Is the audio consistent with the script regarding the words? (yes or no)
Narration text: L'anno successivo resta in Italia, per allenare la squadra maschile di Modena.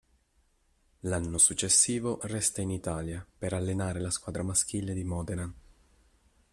yes